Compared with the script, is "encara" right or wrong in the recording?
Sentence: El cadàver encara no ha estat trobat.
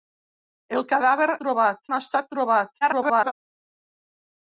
wrong